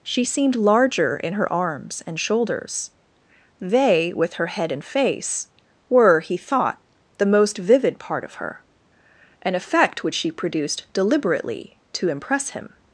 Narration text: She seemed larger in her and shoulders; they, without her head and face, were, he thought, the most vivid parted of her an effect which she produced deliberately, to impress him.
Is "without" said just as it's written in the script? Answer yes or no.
no